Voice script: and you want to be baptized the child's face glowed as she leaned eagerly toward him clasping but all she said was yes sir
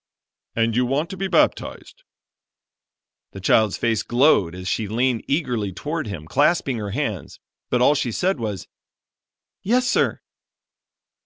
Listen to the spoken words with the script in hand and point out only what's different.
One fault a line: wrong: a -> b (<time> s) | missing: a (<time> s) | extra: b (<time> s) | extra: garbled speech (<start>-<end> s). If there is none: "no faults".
extra: her hands (6.8 s)